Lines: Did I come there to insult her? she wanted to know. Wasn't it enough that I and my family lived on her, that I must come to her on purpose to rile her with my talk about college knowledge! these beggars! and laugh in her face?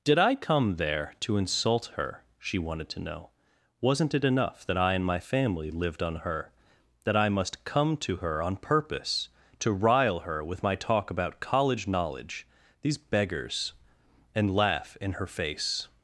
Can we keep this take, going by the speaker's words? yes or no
yes